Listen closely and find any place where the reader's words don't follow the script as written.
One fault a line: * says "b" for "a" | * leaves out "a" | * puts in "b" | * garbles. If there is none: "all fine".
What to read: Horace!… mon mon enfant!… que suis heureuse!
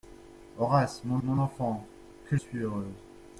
all fine